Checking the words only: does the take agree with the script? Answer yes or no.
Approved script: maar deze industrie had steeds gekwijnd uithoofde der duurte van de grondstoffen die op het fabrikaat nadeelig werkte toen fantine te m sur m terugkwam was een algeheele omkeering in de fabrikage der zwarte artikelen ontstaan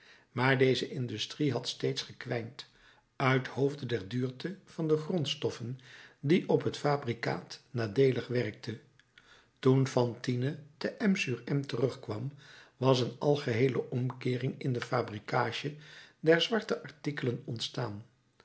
yes